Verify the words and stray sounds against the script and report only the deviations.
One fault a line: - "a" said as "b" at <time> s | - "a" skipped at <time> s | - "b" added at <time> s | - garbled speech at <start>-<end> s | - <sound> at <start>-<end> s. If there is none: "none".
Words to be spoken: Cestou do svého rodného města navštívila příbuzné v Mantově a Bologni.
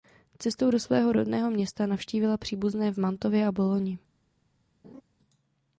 - laugh at 4.8-5.0 s